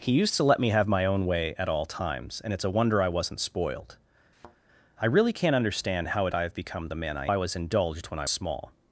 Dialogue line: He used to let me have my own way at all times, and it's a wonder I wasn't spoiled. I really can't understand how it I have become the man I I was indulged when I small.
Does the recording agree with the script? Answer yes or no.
yes